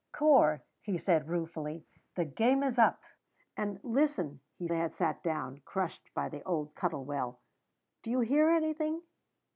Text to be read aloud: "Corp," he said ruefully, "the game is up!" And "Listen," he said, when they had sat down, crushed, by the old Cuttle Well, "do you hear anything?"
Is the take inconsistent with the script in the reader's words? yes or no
yes